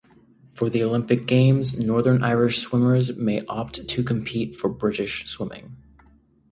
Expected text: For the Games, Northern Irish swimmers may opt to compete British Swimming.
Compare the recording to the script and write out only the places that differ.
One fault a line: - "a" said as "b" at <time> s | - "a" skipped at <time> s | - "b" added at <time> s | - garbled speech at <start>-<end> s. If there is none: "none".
- "Olympic" added at 0.8 s
- "for" added at 4.5 s